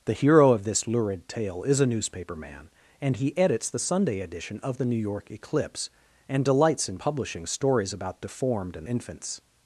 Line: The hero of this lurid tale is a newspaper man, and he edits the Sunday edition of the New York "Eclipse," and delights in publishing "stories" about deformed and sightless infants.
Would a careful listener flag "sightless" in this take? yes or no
yes